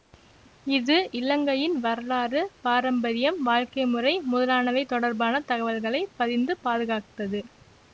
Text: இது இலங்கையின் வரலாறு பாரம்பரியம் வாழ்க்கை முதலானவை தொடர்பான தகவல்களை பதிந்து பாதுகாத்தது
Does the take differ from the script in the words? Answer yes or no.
yes